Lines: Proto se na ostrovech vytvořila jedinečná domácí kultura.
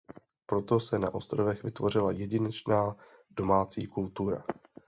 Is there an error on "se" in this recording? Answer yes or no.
no